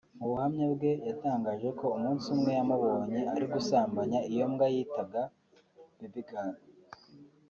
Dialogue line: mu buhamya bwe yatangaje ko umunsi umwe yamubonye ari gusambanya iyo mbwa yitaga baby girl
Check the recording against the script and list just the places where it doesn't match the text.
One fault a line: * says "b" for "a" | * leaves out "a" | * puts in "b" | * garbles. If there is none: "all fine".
all fine